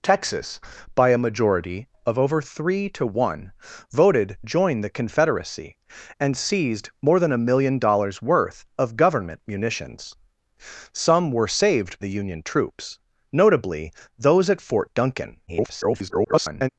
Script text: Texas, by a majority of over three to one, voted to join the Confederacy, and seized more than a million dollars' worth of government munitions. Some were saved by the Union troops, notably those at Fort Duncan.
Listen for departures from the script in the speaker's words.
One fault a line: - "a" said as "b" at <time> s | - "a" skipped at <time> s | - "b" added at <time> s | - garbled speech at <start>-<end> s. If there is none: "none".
- "to" skipped at 4.4 s
- "by" skipped at 12.0 s
- garbled speech at 15.5-16.7 s